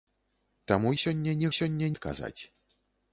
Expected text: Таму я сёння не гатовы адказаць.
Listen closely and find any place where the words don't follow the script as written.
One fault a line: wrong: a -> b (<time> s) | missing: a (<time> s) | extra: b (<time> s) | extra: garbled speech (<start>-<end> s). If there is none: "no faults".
missing: я (0.9 s)
wrong: гатовы -> сёння (1.6 s)